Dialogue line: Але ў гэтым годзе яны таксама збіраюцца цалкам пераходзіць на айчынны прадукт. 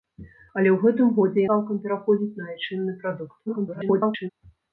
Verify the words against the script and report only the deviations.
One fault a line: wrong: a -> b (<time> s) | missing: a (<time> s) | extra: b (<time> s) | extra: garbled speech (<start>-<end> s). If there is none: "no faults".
missing: яны таксама збіраюцца (1.4 s)
extra: garbled speech (3.5-4.3 s)